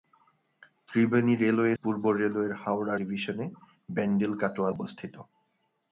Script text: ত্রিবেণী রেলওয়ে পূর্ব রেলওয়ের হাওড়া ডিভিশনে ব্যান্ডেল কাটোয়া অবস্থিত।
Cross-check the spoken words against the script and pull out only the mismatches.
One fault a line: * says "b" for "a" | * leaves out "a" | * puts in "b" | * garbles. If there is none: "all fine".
all fine